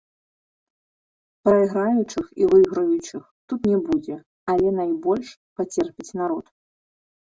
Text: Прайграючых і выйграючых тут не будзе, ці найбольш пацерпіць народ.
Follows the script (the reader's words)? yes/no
no